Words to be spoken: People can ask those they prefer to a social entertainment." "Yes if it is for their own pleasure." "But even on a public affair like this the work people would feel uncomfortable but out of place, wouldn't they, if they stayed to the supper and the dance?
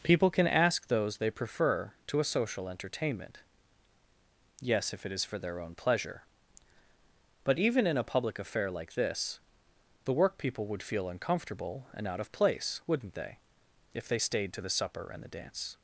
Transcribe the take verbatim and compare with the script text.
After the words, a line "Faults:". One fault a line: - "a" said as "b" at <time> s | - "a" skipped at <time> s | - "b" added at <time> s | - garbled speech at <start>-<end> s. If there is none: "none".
People can ask those they prefer to a social entertainment." "Yes if it is for their own pleasure." "But even in a public affair like this the work people would feel uncomfortable and out of place, wouldn't they, if they stayed to the supper and the dance?
Faults:
- "on" said as "in" at 7.8 s
- "but" said as "and" at 11.9 s